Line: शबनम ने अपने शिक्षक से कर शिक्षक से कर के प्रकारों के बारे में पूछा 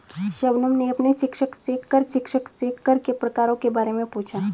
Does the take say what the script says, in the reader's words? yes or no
yes